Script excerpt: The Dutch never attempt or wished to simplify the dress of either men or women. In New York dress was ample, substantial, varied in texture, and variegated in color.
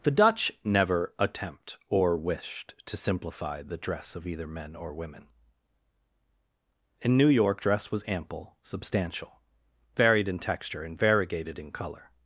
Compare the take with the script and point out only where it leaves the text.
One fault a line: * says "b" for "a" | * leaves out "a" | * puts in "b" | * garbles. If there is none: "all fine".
all fine